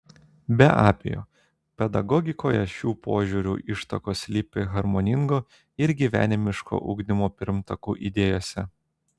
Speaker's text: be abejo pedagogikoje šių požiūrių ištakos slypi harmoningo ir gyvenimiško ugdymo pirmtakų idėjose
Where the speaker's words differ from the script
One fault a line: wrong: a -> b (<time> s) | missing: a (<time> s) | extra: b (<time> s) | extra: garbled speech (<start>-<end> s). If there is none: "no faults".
no faults